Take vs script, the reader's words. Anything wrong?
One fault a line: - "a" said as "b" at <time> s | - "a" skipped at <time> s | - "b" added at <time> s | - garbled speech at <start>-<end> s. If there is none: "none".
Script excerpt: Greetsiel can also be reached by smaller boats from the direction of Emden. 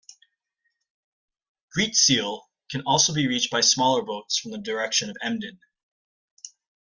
none